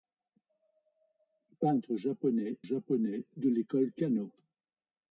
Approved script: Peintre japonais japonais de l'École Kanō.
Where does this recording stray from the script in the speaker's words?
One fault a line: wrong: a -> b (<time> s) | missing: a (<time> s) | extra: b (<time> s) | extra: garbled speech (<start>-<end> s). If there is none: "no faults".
no faults